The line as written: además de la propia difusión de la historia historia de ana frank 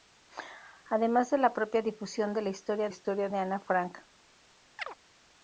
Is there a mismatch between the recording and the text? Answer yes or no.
no